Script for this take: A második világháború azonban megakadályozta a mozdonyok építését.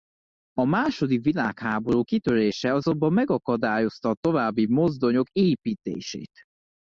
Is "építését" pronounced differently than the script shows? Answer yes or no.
no